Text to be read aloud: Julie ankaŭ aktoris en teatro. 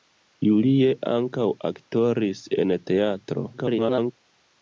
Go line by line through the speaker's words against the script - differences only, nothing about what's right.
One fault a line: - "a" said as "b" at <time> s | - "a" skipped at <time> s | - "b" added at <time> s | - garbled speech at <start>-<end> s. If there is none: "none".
- garbled speech at 3.5-4.1 s